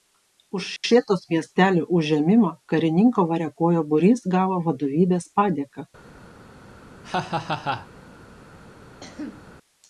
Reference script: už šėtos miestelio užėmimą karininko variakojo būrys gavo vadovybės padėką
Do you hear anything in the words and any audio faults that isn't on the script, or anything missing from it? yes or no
yes